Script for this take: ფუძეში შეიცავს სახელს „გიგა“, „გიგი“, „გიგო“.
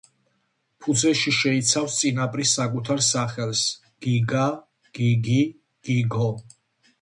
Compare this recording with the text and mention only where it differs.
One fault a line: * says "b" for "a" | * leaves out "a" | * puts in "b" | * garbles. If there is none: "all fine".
* puts in "წინაპრის საკუთარ"